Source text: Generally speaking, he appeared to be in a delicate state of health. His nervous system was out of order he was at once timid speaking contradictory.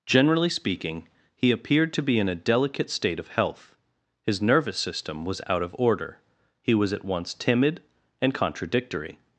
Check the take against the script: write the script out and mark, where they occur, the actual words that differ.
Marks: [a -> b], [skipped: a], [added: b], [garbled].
Generally speaking, he appeared to be in a delicate state of health. His nervous system was out of order he was at once timid [speaking -> and] contradictory.